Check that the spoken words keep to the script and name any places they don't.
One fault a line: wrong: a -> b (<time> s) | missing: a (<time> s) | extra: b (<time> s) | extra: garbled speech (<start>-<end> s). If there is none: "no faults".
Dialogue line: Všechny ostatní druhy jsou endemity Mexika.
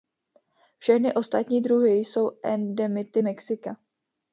no faults